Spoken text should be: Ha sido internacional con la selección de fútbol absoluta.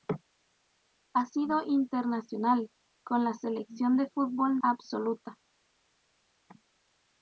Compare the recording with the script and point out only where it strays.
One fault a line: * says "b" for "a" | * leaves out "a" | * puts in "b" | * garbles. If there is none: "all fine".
all fine